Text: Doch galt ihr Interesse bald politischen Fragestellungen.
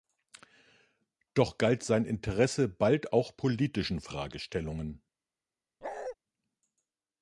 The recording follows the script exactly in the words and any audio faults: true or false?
false